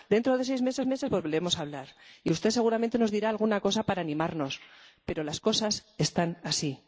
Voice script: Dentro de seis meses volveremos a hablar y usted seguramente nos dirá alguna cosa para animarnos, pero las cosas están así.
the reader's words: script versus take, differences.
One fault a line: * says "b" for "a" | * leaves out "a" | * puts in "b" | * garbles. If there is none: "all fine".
* puts in "meses"